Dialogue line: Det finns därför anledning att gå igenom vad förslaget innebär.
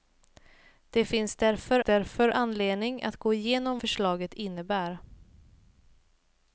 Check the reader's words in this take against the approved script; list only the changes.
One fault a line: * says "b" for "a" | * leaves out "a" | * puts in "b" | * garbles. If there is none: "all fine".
* puts in "därför"
* leaves out "vad"